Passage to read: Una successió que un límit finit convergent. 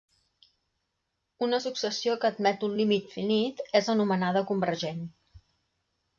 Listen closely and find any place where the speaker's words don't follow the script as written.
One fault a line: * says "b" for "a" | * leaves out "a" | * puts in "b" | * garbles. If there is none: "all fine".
* puts in "admet"
* puts in "és anomenada"